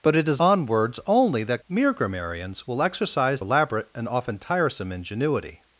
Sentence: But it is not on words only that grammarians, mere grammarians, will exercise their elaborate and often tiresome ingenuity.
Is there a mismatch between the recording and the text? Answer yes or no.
yes